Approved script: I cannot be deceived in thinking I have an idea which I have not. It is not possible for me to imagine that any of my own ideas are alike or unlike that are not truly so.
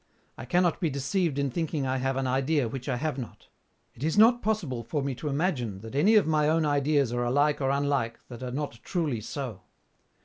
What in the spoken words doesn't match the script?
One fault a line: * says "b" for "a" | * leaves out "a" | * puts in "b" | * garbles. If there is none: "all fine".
all fine